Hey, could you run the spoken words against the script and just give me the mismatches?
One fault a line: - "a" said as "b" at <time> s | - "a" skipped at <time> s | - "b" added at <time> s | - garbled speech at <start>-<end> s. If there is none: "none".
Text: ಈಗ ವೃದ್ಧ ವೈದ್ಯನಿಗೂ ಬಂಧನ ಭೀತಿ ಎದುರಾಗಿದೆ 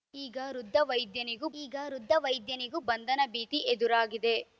- "ಈಗ ವೃದ್ಧ ವೈದ್ಯನಿಗೂ" added at 1.6 s